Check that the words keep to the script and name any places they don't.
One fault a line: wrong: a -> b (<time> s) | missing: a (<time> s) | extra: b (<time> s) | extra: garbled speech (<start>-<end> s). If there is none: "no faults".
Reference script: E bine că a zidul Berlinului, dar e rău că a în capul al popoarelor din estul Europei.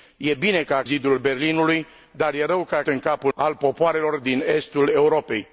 no faults